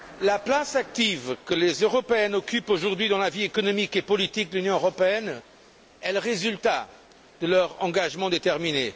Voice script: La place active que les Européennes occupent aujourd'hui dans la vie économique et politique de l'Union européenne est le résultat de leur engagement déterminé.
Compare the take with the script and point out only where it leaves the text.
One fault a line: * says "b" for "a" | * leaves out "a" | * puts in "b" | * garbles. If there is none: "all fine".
all fine